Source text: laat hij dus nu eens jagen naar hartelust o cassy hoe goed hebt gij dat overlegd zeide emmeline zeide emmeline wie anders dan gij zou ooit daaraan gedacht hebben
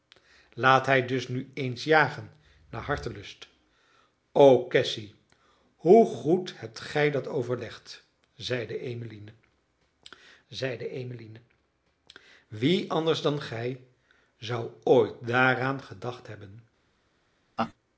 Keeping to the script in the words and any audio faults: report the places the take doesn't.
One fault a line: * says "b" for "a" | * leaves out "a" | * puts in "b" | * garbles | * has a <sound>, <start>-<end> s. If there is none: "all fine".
* has a laugh, 17.6-17.7 s